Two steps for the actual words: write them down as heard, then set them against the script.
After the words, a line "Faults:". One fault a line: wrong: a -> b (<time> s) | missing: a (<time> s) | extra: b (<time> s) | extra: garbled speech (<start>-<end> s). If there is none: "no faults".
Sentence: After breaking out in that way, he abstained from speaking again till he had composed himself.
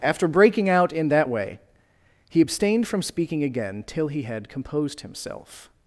After breaking out in that way, he abstained from speaking again till he had composed himself.
Faults:
no faults